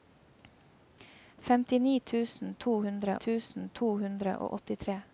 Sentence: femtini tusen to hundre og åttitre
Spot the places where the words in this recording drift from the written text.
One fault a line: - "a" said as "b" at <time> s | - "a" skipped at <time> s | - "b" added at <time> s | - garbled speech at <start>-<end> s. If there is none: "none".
- "tusen to hundre" added at 3.3 s